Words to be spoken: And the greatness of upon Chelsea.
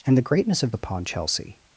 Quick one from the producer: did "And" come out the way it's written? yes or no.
yes